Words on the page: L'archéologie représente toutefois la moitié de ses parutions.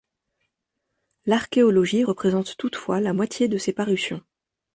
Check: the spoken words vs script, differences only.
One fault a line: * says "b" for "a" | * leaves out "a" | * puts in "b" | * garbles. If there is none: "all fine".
all fine